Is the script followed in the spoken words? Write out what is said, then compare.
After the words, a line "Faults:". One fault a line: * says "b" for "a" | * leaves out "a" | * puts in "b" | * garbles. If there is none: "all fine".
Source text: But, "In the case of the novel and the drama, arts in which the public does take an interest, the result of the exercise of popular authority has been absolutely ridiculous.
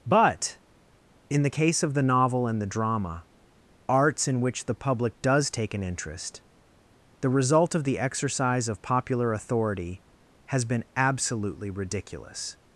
But, "In the case of the novel and the drama, arts in which the public does take an interest, the result of the exercise of popular authority has been absolutely ridiculous.
Faults:
all fine